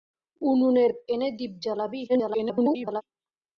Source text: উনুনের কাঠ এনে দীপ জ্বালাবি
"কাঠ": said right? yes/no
no